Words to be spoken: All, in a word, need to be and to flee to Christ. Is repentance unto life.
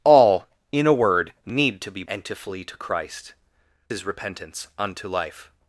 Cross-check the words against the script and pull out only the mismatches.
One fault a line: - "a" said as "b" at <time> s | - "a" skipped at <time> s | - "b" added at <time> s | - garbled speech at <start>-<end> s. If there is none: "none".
none